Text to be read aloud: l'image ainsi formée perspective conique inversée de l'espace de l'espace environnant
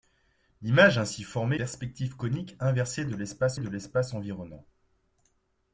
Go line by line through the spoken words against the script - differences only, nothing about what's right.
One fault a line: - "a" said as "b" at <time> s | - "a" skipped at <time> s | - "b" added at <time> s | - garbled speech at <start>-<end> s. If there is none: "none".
none